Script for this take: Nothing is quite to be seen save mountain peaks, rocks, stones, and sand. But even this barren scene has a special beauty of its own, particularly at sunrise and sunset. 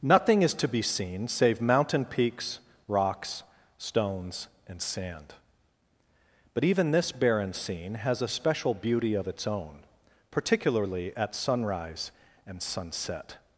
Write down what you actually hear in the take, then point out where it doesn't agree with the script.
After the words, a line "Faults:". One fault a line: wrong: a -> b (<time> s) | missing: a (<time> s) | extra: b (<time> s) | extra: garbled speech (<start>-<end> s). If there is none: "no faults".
Nothing is to be seen save mountain peaks, rocks, stones, and sand. But even this barren scene has a special beauty of its own, particularly at sunrise and sunset.
Faults:
missing: quite (0.6 s)